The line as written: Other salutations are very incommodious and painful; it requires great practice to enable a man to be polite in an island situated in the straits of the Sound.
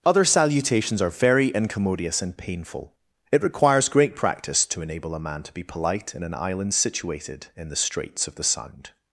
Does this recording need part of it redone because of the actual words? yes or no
no